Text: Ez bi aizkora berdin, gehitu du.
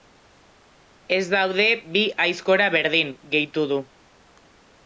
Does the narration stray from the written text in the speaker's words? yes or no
yes